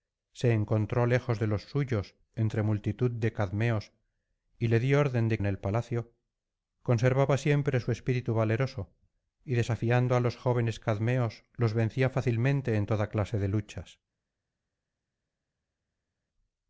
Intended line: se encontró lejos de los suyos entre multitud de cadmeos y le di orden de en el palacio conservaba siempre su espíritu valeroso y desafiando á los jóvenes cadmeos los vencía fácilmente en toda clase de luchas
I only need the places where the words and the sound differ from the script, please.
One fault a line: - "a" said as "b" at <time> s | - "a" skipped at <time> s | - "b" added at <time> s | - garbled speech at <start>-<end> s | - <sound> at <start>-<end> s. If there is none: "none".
none